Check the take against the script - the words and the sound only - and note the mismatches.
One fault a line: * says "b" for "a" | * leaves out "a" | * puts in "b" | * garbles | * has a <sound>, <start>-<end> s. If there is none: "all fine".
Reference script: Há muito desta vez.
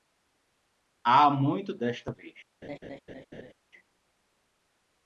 * has a laugh, 2.6-3.5 s